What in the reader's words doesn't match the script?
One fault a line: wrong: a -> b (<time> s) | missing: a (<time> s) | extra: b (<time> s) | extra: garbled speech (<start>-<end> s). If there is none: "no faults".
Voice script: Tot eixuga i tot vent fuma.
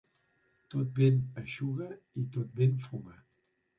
extra: vent (1.0 s)